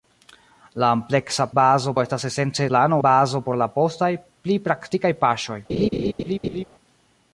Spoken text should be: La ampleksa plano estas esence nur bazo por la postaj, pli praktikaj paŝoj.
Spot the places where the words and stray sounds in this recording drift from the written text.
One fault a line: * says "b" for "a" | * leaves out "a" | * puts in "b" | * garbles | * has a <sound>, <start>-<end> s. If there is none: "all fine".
* says "bazo" for "plano"
* says "plano" for "nur"
* has a laugh, 5.7-6.6 s